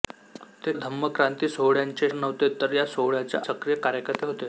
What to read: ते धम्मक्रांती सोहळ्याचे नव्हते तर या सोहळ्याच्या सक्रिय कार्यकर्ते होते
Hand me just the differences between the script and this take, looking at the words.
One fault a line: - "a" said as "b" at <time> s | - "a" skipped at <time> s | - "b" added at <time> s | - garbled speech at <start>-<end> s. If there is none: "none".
none